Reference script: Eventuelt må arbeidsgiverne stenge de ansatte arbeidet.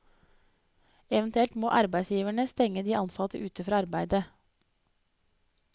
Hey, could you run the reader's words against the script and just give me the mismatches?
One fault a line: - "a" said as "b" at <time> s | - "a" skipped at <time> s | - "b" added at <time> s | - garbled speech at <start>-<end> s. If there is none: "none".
- "ute fra" added at 3.5 s